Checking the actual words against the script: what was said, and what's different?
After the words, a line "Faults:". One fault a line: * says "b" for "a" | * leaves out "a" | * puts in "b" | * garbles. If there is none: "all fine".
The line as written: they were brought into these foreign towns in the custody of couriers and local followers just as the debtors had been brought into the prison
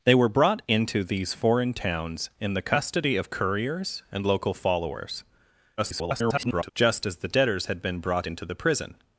they were brought into these foreign towns in the custody of couriers and local followers [garbled] just as the debtors had been brought into the prison
Faults:
* garbles